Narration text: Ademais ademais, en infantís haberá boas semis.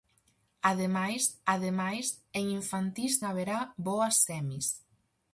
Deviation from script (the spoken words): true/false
false